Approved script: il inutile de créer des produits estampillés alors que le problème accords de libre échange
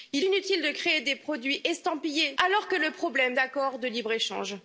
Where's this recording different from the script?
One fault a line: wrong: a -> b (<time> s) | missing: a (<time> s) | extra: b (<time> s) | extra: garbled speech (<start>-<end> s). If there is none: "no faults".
no faults